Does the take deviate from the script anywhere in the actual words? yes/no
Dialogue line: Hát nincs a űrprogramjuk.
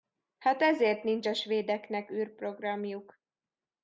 yes